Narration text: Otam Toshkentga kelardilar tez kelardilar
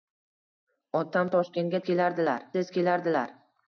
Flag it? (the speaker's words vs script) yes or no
no